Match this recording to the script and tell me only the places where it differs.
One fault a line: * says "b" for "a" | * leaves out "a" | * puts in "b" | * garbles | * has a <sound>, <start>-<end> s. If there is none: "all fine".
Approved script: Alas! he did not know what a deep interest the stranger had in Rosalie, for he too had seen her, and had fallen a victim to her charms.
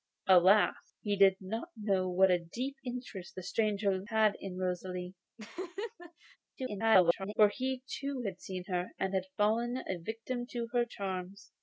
* has a laugh, 5.4-6.4 s
* garbles